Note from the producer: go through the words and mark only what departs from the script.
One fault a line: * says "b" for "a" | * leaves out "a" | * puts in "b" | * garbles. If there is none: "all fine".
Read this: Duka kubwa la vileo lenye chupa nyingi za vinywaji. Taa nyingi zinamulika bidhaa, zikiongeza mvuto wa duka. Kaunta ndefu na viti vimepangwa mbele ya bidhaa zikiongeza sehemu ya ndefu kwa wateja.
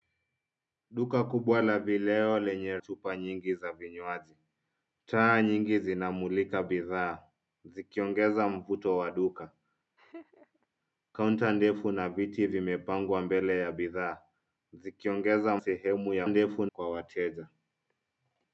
all fine